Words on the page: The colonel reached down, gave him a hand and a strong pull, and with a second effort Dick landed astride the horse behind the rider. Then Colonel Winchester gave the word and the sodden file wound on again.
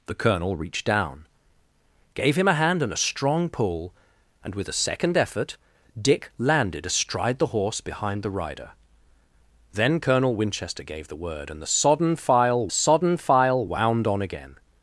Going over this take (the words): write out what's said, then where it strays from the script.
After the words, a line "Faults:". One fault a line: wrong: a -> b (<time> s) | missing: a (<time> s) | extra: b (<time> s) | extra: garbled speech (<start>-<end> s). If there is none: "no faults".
The colonel reached down, gave him a hand and a strong pull, and with a second effort Dick landed astride the horse behind the rider. Then Colonel Winchester gave the word and the sodden file sodden file wound on again.
Faults:
extra: sodden file (12.7 s)